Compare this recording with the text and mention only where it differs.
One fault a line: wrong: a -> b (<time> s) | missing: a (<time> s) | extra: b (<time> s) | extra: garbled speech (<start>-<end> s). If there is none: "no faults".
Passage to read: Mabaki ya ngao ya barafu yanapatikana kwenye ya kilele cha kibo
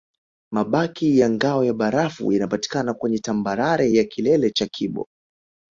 extra: tambarare (3.2 s)